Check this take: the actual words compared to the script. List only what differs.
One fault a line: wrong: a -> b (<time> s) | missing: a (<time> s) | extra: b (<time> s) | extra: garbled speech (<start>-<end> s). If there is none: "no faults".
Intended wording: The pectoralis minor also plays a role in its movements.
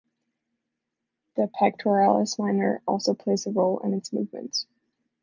no faults